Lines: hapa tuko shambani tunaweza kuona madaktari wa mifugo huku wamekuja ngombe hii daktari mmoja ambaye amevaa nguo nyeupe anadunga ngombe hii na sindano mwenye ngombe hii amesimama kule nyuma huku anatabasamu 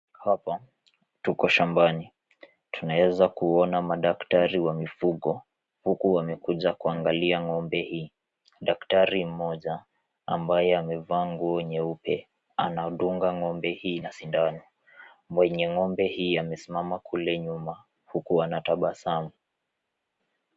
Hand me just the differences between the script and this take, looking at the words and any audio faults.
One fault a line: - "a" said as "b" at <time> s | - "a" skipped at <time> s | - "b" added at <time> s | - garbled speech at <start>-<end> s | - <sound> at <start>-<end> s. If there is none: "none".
- "kuangalia" added at 6.7 s